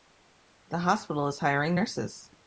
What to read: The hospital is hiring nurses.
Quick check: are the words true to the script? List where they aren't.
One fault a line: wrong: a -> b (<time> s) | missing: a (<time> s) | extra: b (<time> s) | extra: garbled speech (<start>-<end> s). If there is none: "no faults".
no faults